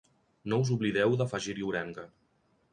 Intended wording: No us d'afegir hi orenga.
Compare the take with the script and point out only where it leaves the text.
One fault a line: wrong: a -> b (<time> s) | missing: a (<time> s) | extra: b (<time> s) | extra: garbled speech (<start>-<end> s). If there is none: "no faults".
extra: oblideu (0.8 s)